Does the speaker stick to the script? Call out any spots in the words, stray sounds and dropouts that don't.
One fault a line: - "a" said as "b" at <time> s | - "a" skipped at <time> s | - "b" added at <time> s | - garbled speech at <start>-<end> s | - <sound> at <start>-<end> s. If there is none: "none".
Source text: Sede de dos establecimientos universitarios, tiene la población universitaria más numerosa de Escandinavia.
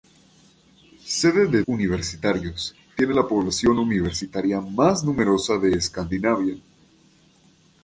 - "dos establecimientos" skipped at 1.6 s